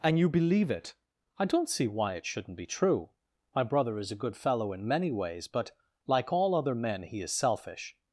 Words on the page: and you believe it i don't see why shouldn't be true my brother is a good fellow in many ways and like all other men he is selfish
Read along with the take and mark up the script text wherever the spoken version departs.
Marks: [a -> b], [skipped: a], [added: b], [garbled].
and you believe it i don't see why [added: it] shouldn't be true my brother is a good fellow in many ways [and -> but] like all other men he is selfish